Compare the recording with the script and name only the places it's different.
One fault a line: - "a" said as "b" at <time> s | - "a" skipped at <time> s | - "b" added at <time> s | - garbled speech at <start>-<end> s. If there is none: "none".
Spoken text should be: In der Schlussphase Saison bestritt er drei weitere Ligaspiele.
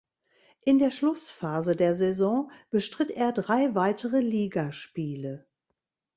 - "der" added at 1.8 s